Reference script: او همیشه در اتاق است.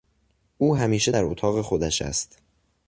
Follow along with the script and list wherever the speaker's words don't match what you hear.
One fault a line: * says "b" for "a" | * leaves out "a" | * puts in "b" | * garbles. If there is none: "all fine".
* puts in "خودش"